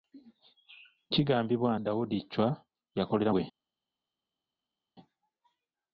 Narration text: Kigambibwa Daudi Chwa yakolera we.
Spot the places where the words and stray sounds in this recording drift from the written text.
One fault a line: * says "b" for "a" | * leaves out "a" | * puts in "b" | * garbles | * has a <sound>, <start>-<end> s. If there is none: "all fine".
all fine